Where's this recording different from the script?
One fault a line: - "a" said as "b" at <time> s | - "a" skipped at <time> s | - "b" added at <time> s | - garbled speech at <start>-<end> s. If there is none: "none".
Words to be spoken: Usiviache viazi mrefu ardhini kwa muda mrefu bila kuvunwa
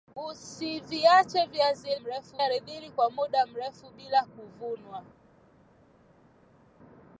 none